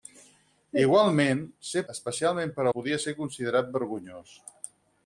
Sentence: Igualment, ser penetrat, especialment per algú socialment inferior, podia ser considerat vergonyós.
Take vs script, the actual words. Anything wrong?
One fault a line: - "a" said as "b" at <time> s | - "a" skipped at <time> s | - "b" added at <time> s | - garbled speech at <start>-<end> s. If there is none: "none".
- "penetrat" skipped at 1.8 s
- "algú socialment inferior" skipped at 2.7 s